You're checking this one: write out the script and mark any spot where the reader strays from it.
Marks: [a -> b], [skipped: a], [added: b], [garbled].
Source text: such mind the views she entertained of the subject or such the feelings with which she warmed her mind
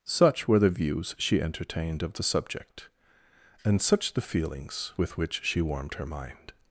such [mind -> were] the views she entertained of the subject [or -> and] such the feelings with which she warmed her mind